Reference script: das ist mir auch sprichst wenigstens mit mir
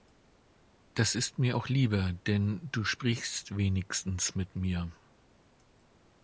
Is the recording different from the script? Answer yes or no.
yes